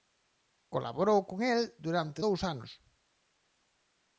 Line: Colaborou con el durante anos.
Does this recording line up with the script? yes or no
no